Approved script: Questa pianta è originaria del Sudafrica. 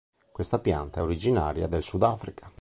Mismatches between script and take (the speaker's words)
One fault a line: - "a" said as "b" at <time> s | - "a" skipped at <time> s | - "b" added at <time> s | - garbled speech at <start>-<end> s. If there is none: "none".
none